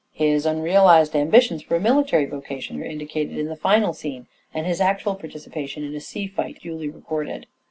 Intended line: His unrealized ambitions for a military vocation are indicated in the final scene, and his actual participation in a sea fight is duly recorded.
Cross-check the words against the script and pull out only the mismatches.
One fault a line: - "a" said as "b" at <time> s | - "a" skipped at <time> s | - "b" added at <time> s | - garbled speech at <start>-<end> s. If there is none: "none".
- "is" skipped at 6.6 s